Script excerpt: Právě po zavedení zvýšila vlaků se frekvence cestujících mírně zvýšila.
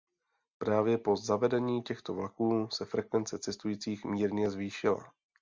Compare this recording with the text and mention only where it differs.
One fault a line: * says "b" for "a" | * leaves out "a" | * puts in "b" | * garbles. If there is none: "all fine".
* says "těchto" for "zvýšila"